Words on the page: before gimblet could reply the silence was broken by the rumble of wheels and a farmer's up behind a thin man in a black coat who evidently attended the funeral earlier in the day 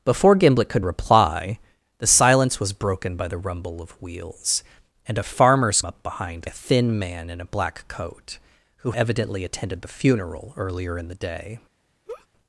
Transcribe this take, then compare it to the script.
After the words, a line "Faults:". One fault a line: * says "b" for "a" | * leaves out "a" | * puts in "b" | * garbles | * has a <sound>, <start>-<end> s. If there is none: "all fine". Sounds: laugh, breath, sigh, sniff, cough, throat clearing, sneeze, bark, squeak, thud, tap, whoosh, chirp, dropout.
before gimblet could reply the silence was broken by the rumble of wheels and a farmer's up behind a thin man in a black coat who evidently attended the funeral earlier in the day
Faults:
* has a laugh, 12.1-12.3 s